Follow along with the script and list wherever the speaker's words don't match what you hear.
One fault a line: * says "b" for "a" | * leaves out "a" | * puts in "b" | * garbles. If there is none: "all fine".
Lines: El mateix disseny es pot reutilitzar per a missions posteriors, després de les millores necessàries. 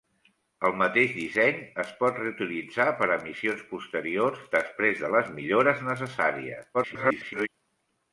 * garbles